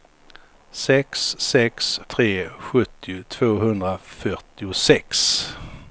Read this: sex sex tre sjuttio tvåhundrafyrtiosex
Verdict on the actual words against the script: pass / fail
pass